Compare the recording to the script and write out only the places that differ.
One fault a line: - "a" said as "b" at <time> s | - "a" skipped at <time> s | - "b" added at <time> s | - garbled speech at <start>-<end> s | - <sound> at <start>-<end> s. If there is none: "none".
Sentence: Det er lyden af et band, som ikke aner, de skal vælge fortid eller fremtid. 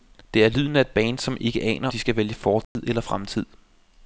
- dropout at 2.6-2.8 s